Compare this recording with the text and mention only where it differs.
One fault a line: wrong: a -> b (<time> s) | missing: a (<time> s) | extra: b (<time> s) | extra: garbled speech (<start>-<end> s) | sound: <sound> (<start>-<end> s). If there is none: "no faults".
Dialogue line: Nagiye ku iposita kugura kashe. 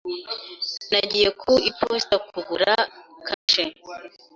sound: dropout (3.3-3.5 s)